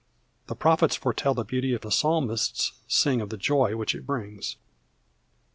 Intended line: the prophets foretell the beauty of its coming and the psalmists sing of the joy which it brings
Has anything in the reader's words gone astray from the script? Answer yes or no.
yes